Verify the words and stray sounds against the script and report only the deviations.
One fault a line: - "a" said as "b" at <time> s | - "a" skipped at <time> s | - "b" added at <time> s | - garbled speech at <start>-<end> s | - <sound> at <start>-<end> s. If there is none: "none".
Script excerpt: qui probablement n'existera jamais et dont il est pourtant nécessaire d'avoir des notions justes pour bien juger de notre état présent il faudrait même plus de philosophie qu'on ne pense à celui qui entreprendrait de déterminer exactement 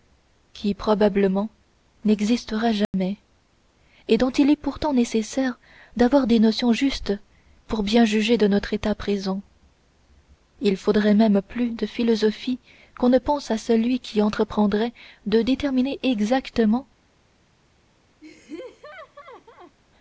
- dropout at 2.8-2.9 s
- laugh at 18.2-19.8 s